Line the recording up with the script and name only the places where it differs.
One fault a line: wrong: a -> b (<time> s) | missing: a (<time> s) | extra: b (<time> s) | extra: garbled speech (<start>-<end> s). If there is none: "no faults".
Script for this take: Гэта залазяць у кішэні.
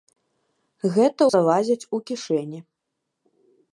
no faults